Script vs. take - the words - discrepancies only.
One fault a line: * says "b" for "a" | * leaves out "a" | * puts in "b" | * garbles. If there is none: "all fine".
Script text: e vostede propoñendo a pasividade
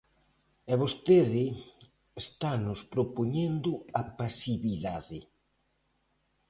* puts in "estanos"